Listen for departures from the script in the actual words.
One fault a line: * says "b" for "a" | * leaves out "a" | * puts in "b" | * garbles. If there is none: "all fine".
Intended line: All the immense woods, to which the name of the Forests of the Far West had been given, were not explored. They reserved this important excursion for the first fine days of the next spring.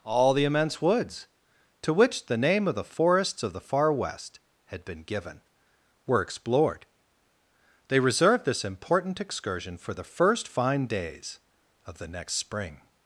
* leaves out "not"